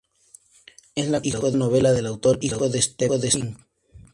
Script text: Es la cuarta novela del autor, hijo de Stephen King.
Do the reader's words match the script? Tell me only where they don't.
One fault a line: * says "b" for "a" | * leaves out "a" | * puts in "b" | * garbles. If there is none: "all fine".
* says "hijo" for "cuarta"